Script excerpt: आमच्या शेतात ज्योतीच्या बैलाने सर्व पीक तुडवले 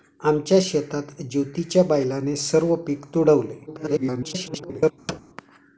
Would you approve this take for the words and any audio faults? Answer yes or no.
no